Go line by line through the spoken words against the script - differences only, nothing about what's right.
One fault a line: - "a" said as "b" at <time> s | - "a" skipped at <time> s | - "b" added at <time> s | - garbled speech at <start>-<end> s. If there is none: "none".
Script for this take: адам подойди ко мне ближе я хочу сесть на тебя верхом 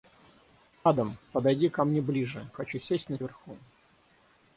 - "я" skipped at 2.5 s
- "тебя" skipped at 3.2 s